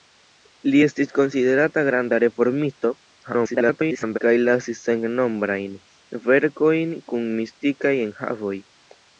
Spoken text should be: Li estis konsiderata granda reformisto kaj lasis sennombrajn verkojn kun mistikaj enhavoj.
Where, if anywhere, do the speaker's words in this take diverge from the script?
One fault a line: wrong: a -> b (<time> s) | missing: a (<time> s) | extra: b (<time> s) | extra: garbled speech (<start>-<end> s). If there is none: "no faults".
extra: garbled speech (3.2-4.2 s)